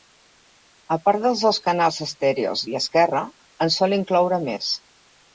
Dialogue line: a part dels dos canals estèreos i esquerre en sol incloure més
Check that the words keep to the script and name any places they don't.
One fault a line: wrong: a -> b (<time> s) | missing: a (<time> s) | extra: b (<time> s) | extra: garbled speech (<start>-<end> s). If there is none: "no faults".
no faults